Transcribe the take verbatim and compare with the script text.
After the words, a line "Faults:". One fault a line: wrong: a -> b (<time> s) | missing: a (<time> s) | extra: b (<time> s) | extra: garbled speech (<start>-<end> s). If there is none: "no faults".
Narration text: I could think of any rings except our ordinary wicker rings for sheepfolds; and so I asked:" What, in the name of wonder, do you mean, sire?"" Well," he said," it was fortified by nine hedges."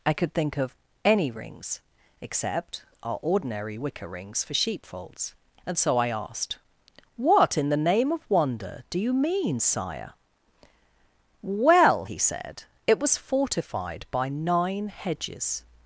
I could think of any rings except our ordinary wicker rings for sheepfolds; and so I asked:" What, in the name of wonder, do you mean, sire?"" Well," he said," it was fortified by nine hedges."
Faults:
no faults